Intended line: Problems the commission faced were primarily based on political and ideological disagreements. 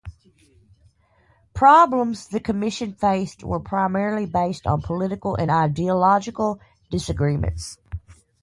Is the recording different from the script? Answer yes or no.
no